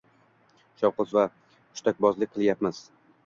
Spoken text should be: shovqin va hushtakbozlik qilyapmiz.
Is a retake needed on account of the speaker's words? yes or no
no